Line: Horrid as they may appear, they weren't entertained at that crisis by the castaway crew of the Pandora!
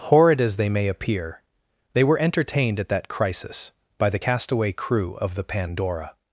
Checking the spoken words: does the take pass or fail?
fail